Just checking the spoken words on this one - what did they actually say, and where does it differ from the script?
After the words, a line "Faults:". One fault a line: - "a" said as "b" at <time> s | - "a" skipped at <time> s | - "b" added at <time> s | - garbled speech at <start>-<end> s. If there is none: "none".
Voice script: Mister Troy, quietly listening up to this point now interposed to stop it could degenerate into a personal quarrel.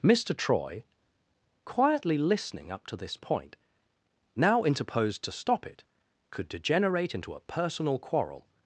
Mister Troy, quietly listening up to this point now interposed to stop it could degenerate into a personal quarrel.
Faults:
none